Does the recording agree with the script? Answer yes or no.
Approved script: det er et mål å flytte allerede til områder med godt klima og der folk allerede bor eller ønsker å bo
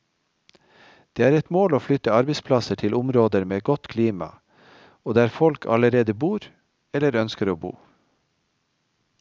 no